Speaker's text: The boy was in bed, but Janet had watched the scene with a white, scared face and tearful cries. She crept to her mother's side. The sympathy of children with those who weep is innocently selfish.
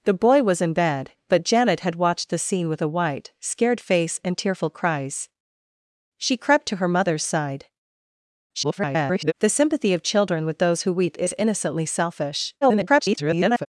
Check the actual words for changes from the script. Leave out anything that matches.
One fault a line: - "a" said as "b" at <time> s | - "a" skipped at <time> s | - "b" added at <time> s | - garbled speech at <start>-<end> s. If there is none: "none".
- garbled speech at 8.5-9.3 s
- garbled speech at 12.6-13.7 s